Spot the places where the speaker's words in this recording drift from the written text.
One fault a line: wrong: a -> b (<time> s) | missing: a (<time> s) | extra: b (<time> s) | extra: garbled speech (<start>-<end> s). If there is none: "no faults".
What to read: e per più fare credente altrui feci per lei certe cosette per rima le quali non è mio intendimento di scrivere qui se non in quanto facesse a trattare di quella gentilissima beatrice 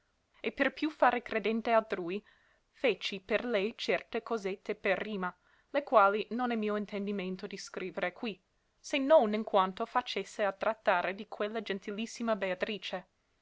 no faults